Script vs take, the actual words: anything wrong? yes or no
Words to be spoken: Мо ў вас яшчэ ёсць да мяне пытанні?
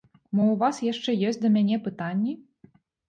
no